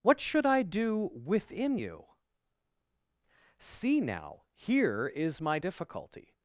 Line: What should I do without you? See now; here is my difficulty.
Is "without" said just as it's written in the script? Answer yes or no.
no